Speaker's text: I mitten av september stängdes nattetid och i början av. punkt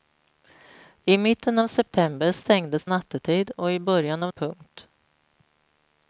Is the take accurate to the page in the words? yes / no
yes